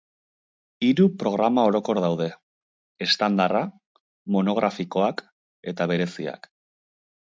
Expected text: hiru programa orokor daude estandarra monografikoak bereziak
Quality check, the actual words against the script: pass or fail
fail